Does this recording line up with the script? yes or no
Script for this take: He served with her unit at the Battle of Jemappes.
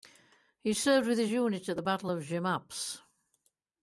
no